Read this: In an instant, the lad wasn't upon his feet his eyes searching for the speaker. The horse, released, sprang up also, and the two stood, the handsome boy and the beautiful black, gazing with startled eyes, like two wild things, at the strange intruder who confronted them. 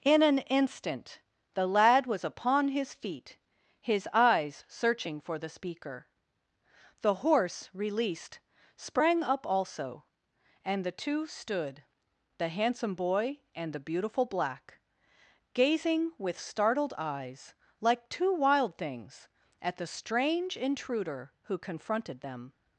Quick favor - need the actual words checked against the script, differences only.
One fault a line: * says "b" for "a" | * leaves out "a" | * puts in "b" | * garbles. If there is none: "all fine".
* says "was" for "wasn't"